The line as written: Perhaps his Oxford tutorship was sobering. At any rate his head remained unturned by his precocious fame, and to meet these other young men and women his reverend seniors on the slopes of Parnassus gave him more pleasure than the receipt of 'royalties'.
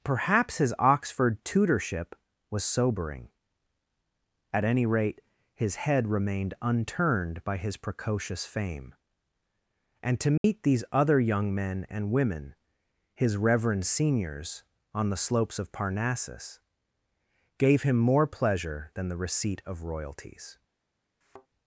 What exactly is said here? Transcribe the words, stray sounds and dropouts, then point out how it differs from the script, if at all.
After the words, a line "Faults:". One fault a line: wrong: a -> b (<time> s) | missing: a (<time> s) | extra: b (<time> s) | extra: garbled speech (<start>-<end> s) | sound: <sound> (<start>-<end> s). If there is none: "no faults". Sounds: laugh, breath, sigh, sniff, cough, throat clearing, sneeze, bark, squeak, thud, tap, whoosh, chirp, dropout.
Perhaps his Oxford tutorship was sobering. At any rate his head remained unturned by his precocious fame, and to meet these other young men and women his reverend seniors on the slopes of Parnassus gave him more pleasure than the receipt of 'royalties'.
Faults:
sound: dropout (10.4-10.4 s)
sound: thud (21.2-21.5 s)